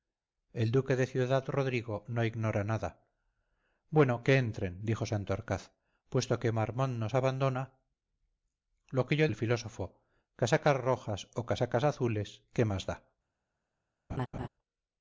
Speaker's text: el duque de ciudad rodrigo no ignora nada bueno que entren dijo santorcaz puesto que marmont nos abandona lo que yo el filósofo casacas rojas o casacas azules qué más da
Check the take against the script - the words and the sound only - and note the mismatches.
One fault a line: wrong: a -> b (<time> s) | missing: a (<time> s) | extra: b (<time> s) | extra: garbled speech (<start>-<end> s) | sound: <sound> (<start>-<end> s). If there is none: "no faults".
sound: laugh (14.1-14.5 s)